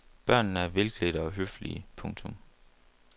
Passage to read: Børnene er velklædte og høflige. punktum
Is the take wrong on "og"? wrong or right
right